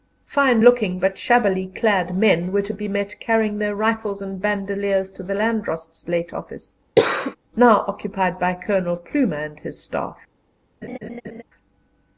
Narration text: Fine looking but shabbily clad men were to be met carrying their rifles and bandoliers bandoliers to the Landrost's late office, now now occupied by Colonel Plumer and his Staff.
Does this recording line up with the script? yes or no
no